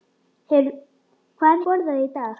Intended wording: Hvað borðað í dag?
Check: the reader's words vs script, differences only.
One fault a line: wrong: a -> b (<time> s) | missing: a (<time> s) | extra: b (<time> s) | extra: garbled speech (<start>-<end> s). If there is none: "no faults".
no faults